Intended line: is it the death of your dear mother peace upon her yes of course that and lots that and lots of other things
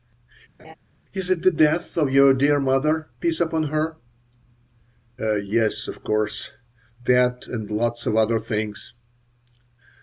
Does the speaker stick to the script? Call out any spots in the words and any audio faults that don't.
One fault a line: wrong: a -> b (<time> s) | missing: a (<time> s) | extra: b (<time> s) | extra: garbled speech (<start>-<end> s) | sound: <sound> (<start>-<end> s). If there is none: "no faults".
sound: laugh (0.6-0.8 s)
missing: that and lots (8.1 s)